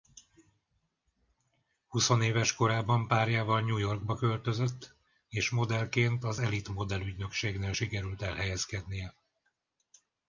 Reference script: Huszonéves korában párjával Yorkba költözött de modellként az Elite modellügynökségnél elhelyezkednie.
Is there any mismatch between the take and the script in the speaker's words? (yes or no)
yes